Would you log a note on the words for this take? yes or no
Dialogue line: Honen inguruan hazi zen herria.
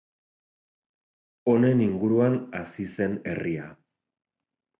no